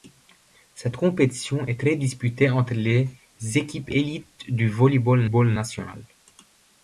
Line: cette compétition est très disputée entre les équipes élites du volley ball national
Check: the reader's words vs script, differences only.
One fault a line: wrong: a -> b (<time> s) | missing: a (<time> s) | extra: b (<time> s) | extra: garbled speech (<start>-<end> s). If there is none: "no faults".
extra: ball (5.2 s)